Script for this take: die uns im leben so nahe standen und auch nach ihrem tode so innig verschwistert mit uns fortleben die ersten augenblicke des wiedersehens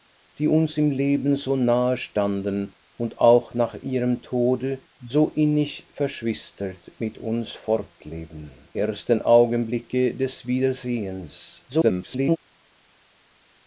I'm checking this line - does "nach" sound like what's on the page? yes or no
yes